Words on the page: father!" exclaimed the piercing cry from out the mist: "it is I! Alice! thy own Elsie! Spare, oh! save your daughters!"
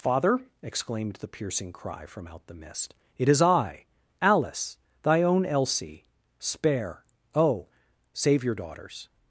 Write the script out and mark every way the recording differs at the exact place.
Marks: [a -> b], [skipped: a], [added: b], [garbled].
father!" exclaimed the piercing cry from out the mist: "it is I! Alice! thy own Elsie! Spare, oh! save your daughters!"